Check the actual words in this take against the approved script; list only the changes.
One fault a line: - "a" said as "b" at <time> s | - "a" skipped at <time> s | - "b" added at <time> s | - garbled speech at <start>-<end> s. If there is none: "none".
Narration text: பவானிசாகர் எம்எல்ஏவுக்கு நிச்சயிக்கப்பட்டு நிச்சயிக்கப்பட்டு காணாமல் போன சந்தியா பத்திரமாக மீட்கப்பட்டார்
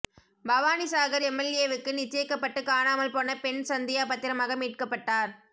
- "நிச்சயிக்கப்பட்டு" skipped at 2.6 s
- "பெண்" added at 3.4 s